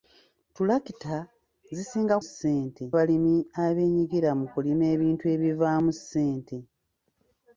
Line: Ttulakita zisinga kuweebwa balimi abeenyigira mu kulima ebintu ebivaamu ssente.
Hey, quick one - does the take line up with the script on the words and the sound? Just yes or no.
no